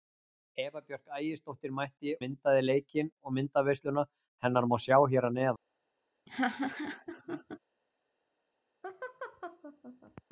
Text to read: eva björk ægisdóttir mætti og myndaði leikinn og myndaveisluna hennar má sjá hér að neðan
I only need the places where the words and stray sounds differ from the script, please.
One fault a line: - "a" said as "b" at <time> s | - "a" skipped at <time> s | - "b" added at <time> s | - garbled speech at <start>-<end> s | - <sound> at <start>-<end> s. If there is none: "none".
- "og" skipped at 2.1 s
- laugh at 6.3-7.6 s
- laugh at 8.8-10.2 s